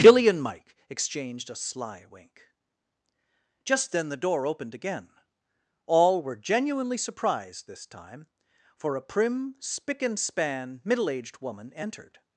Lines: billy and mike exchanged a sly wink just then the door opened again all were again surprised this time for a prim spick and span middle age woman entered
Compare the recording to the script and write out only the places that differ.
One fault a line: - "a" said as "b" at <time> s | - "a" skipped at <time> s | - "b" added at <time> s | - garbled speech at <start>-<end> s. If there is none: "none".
- "again" said as "genuinely" at 6.4 s
- "age" said as "aged" at 11.1 s